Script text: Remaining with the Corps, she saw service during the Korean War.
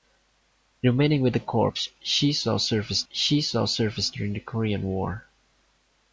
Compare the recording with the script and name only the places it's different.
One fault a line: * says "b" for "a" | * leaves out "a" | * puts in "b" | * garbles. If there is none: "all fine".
* puts in "she saw service"